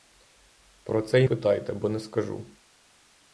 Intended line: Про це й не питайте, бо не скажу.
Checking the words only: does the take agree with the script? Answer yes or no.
no